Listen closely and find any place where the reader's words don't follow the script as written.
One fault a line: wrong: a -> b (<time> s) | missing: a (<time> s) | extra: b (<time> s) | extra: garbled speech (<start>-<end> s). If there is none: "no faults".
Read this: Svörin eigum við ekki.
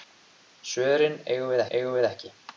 extra: eigum við (1.7 s)